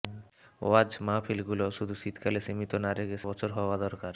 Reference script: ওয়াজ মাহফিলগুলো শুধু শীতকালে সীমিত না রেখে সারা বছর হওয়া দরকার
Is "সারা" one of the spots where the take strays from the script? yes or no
yes